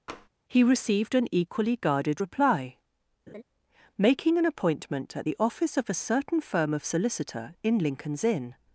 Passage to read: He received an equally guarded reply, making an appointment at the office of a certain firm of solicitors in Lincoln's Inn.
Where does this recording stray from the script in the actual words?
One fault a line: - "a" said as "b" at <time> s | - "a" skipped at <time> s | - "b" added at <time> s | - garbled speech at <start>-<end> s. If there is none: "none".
- "solicitors" said as "solicitor" at 6.8 s